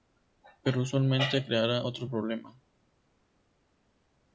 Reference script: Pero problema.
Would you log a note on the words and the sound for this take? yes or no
yes